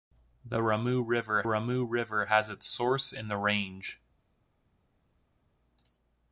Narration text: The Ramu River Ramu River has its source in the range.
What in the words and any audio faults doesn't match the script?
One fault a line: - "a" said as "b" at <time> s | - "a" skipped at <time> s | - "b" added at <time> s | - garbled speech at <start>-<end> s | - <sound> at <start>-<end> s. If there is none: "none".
none